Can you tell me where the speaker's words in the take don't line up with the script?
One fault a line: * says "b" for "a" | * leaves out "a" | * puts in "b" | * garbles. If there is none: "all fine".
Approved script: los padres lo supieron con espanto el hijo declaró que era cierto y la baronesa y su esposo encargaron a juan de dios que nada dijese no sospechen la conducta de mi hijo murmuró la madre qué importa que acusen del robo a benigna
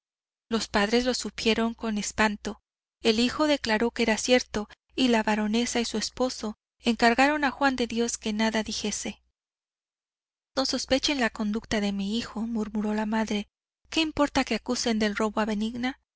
all fine